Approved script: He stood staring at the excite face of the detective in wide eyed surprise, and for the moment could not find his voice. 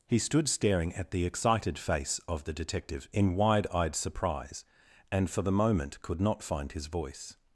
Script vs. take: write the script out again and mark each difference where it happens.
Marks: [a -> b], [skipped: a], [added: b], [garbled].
He stood staring at the [excite -> excited] face of the detective in wide eyed surprise, and for the moment could not find his voice.